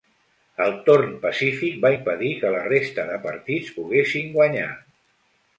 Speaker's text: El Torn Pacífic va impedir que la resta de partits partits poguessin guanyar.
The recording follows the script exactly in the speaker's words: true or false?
false